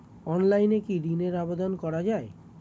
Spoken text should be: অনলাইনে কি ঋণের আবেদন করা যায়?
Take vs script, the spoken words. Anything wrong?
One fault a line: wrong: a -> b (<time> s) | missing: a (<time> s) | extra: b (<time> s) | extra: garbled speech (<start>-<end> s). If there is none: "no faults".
no faults